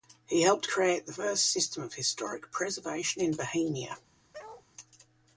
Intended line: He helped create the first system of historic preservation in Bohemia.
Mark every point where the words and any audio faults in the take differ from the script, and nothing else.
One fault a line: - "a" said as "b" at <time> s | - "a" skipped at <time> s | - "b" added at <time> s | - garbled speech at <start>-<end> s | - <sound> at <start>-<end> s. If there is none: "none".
- bark at 4.3-4.7 s